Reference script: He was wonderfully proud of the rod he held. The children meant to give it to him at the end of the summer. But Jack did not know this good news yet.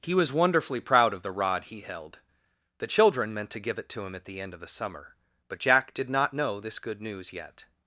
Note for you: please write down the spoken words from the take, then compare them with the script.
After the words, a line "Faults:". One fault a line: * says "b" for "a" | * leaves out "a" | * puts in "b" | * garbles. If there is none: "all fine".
He was wonderfully proud of the rod he held. The children meant to give it to him at the end of the summer. But Jack did not know this good news yet.
Faults:
all fine